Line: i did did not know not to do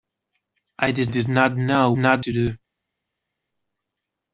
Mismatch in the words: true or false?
false